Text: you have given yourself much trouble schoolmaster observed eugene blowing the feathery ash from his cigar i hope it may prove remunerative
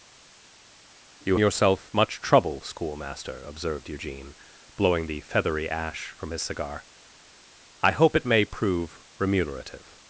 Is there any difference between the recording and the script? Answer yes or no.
yes